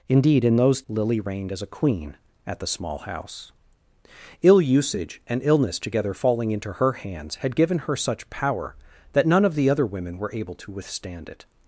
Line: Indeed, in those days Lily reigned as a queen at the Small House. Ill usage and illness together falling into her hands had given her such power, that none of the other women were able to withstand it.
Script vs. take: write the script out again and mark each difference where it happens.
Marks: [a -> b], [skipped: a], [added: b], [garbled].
Indeed, in those [skipped: days] Lily reigned as a queen at the Small House. Ill usage and illness together falling into her hands had given her such power, that none of the other women were able to withstand it.